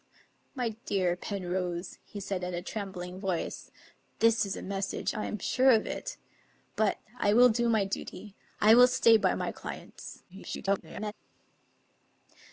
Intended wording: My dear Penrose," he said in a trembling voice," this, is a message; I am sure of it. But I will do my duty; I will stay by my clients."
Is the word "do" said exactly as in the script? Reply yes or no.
yes